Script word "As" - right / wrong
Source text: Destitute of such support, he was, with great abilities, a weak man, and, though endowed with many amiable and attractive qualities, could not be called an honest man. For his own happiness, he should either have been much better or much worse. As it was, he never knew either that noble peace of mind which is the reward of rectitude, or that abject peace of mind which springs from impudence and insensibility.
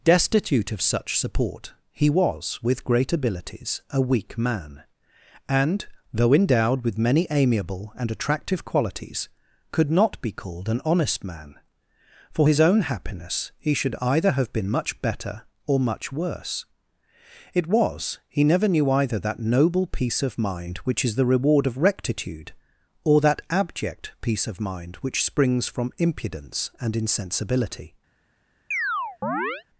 wrong